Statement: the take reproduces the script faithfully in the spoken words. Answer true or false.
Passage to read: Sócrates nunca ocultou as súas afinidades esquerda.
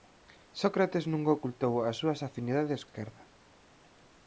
true